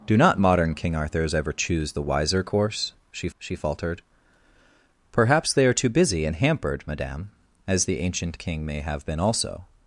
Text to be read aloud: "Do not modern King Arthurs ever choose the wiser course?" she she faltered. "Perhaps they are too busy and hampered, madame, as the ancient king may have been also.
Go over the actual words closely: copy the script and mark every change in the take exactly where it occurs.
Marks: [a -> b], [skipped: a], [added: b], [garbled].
"Do not modern King Arthurs ever choose the wiser course?" she she faltered. "Perhaps they are too busy and hampered, madame, as the ancient king may have been also.